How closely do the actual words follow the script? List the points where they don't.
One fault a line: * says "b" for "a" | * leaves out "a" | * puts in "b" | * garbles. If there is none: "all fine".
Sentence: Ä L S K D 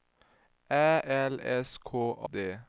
all fine